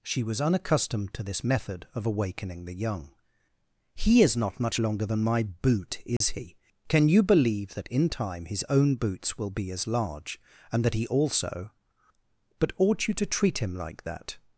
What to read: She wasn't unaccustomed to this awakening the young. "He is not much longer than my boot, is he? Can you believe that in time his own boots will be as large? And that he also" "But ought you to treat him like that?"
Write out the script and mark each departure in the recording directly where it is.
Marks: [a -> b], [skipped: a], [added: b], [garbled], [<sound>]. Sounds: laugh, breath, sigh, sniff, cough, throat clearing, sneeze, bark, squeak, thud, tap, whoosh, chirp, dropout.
She [wasn't -> was] unaccustomed to this [added: method of] awakening the young. "He is not much longer than my boot, is [dropout] he? Can you believe that in time his own boots will be as large? And that he also" "But ought you to treat him like that?"